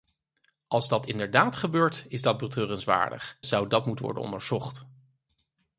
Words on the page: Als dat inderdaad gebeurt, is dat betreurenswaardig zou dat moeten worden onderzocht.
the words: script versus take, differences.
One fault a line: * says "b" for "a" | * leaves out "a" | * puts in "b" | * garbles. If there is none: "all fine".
all fine